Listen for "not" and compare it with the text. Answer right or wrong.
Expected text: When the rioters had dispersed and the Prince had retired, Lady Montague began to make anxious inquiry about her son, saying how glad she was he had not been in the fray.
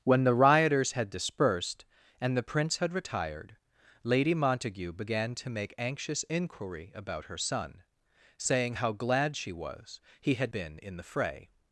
wrong